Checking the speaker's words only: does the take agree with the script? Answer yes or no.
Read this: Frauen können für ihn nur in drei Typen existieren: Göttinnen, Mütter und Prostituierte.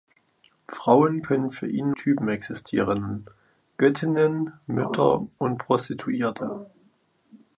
no